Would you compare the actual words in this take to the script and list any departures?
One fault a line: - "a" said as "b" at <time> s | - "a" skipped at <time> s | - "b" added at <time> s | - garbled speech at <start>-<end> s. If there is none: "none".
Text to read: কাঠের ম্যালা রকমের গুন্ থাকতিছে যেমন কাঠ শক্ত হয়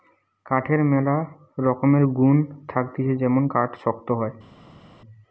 none